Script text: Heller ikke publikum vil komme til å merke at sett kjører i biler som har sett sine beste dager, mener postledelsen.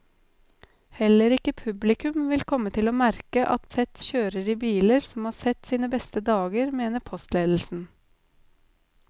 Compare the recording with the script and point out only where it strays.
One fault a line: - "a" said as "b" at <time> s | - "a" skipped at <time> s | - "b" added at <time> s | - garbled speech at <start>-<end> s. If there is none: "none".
none